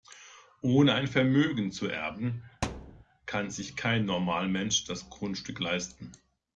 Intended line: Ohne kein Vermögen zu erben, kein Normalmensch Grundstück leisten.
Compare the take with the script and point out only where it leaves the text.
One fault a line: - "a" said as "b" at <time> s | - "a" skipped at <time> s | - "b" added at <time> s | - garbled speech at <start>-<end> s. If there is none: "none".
- "kein" said as "ein" at 0.9 s
- "kann sich" added at 3.2 s
- "das" added at 4.8 s